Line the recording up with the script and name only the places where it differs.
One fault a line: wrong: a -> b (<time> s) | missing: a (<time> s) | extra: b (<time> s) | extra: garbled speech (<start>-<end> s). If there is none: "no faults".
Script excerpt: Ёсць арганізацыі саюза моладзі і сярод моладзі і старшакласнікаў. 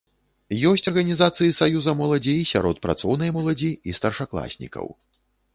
extra: працоўнай (2.9 s)